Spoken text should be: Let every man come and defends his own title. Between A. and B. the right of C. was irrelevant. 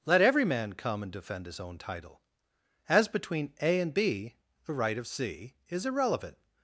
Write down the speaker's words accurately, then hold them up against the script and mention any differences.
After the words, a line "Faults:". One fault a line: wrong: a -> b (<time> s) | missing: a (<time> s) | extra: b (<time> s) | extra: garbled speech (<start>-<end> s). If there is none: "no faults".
Let every man come and defend his own title. As between A. and B. the right of C. is irrelevant.
Faults:
wrong: defends -> defend (1.1 s)
extra: As (2.9 s)
wrong: was -> is (5.7 s)